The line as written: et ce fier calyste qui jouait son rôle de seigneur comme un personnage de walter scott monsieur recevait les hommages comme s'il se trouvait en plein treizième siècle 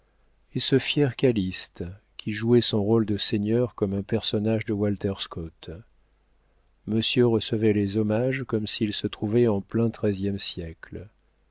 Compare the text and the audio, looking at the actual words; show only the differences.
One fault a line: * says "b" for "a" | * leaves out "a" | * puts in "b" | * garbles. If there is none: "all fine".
all fine